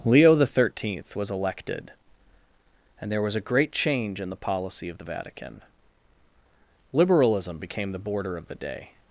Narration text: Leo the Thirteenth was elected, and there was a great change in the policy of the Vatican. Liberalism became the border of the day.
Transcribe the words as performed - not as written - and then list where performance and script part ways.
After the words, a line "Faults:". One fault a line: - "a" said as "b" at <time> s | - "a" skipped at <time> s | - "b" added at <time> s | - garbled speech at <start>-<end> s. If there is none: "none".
Leo the Thirteenth was elected, and there was a great change in the policy of the Vatican. Liberalism became the border of the day.
Faults:
none